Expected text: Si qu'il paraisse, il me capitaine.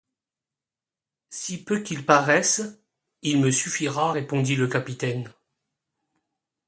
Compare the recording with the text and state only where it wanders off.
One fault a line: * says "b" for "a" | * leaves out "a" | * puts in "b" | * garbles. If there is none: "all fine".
* puts in "peu"
* puts in "suffira répondit le"